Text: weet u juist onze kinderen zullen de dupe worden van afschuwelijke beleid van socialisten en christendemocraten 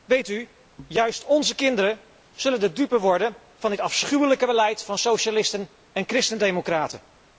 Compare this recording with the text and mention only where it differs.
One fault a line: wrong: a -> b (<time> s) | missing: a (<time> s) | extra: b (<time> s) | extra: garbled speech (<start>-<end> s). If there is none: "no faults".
extra: dit (3.7 s)